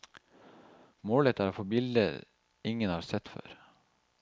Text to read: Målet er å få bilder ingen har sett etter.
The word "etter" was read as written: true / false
false